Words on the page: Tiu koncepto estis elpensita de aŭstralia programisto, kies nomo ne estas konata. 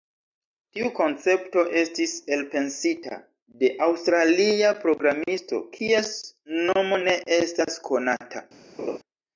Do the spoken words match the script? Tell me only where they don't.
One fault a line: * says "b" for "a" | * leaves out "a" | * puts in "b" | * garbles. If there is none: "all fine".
all fine